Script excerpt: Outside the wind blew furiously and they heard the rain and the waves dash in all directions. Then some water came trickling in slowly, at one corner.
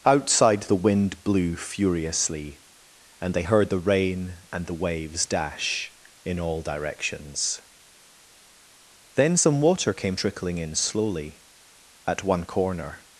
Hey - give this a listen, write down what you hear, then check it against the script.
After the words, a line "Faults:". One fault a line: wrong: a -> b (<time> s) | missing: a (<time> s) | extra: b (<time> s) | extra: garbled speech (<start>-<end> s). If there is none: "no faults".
Outside the wind blew furiously and they heard the rain and the waves dash in all directions. Then some water came trickling in slowly, at one corner.
Faults:
no faults